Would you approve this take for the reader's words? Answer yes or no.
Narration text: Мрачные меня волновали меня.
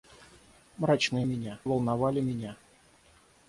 yes